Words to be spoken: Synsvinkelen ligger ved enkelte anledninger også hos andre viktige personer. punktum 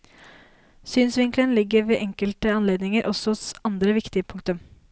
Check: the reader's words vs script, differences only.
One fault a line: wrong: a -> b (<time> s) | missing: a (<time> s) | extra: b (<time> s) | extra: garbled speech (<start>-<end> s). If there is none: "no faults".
missing: personer (4.2 s)